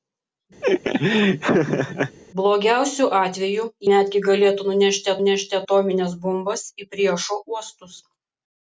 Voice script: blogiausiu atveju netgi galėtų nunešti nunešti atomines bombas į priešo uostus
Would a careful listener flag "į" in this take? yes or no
no